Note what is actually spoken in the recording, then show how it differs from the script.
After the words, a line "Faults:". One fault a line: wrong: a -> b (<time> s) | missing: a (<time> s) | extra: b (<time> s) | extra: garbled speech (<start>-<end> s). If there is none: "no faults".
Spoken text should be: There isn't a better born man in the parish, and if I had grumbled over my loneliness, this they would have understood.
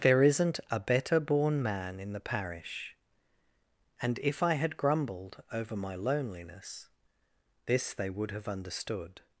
There isn't a better born man in the parish, and if I had grumbled over my loneliness, this they would have understood.
Faults:
no faults